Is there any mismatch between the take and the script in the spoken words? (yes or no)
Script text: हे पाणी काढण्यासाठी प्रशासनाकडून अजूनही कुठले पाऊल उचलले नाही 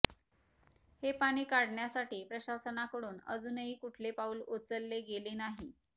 yes